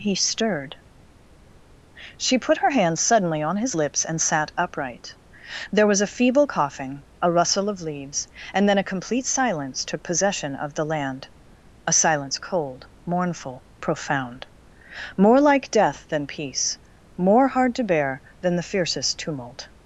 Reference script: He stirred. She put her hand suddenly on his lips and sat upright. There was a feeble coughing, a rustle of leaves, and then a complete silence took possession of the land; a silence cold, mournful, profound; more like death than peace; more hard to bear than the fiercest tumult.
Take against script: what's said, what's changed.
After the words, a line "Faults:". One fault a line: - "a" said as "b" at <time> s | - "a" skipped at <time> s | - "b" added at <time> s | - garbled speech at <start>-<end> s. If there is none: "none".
He stirred. She put her hand suddenly on his lips and sat upright. There was a feeble coughing, a rustle of leaves, and then a complete silence took possession of the land; a silence cold, mournful, profound; more like death than peace; more hard to bear than the fiercest tumult.
Faults:
none